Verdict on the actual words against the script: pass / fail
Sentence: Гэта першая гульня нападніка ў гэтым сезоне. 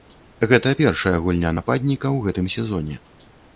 pass